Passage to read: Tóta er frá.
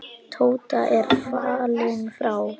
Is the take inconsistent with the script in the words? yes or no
yes